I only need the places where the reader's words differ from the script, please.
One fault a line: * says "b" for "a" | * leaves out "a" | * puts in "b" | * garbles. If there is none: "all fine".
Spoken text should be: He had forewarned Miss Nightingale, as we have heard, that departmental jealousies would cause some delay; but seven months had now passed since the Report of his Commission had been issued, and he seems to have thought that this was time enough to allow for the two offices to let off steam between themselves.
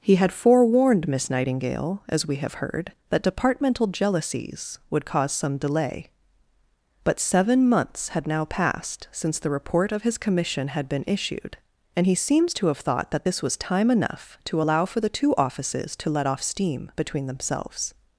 all fine